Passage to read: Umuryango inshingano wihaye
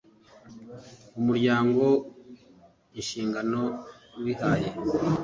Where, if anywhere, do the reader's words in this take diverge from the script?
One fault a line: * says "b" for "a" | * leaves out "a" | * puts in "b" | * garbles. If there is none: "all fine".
all fine